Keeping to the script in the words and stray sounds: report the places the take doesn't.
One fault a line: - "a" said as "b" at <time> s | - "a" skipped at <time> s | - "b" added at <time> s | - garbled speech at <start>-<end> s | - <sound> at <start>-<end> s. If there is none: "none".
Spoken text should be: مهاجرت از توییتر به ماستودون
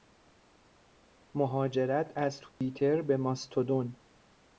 - dropout at 2.5-2.6 s